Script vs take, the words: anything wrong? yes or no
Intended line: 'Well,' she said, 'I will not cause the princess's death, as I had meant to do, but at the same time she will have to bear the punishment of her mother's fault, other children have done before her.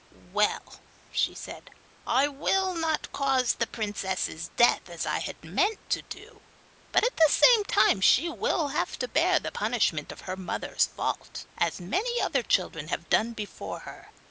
yes